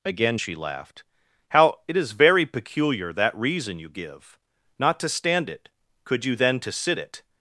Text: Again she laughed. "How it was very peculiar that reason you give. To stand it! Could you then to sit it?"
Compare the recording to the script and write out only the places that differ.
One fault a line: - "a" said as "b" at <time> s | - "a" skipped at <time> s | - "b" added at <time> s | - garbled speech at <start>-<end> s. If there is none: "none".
- "was" said as "is" at 2.0 s
- "Not" added at 4.8 s